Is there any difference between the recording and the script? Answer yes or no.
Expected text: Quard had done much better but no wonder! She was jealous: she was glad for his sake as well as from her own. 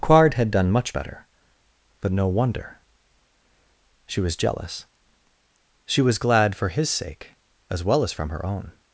no